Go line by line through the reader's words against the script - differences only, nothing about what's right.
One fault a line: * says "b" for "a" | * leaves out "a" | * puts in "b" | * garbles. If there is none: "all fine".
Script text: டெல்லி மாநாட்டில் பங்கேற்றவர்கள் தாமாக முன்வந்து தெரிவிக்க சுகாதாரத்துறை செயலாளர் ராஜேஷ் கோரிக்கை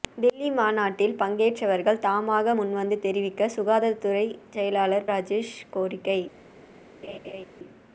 all fine